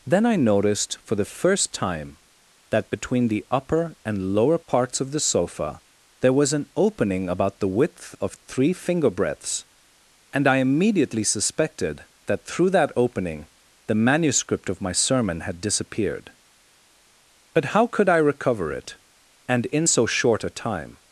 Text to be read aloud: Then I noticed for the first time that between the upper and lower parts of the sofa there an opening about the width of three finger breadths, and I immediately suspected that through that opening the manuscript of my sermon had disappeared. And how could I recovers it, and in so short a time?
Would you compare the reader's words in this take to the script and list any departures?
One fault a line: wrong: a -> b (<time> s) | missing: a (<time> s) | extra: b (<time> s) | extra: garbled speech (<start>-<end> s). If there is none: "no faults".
extra: was (6.3 s)
wrong: And -> But (17.5 s)
wrong: recovers -> recover (18.2 s)